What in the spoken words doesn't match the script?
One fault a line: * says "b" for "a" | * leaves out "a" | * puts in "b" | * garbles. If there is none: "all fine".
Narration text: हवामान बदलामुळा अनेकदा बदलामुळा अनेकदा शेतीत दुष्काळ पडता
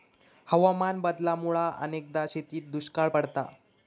* leaves out "बदलामुळा अनेकदा"